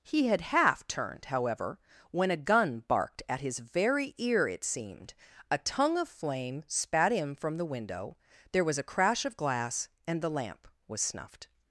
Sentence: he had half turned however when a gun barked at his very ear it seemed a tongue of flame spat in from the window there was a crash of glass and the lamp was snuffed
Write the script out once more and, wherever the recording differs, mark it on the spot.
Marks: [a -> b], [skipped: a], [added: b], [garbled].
he had half turned however when a gun barked at his very ear it seemed a tongue of flame spat in from the window there was a crash of glass and the lamp was snuffed